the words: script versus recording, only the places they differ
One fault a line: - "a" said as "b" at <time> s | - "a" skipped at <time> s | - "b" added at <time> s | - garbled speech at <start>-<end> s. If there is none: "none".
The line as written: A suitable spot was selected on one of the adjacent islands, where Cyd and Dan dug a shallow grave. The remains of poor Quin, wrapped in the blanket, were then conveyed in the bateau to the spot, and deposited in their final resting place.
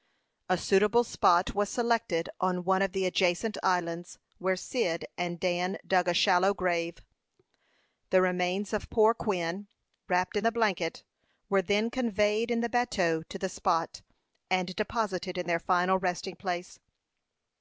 none